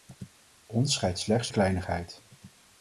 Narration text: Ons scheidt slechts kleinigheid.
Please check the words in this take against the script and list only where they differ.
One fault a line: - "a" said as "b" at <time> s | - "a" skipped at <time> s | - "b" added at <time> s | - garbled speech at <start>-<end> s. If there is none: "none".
none